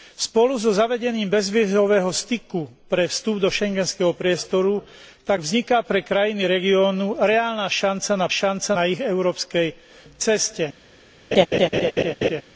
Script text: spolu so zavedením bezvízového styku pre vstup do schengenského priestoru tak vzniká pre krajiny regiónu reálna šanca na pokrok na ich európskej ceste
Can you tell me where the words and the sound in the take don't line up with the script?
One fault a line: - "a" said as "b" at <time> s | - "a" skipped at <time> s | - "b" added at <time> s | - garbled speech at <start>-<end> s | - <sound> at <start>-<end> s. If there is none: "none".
- "pokrok" said as "šanca" at 8.3 s
- laugh at 11.3-12.4 s